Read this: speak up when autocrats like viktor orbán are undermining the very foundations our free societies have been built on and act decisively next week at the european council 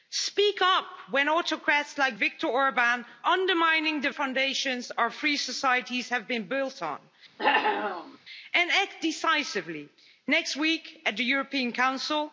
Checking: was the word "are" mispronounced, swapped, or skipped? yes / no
yes